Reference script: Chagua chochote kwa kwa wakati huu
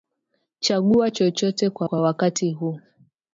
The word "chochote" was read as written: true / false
true